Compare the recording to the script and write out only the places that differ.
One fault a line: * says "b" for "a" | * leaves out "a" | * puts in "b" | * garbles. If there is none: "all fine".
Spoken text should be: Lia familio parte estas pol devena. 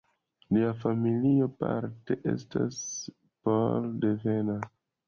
all fine